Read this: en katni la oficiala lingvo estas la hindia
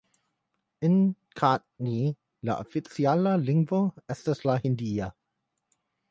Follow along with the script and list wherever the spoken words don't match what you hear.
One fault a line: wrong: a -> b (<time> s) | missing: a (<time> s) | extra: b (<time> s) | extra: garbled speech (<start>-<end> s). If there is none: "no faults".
no faults